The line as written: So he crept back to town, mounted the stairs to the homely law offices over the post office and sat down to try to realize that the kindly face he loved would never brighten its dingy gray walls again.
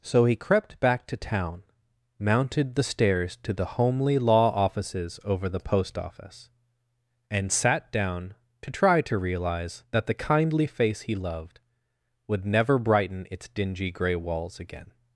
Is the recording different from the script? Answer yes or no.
no